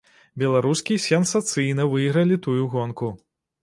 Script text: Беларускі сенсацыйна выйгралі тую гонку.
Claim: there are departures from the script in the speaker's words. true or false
false